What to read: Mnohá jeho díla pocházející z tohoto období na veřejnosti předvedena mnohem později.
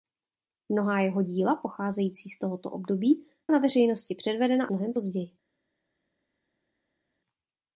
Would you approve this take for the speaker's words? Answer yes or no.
yes